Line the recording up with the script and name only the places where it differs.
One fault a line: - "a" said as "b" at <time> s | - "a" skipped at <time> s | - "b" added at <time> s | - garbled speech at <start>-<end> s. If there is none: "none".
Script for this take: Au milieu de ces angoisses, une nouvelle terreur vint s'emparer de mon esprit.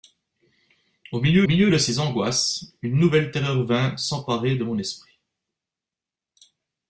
- "milieu" added at 1.5 s